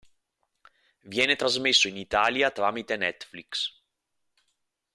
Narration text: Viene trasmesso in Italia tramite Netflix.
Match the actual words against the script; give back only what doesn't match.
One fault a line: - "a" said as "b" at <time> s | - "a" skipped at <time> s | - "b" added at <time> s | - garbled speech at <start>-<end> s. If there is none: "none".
none